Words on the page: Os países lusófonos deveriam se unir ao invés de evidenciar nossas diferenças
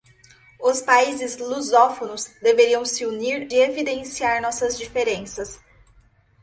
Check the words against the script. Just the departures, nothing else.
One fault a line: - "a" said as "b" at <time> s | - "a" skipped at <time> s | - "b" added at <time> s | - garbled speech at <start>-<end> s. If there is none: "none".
- "ao invés" skipped at 3.5 s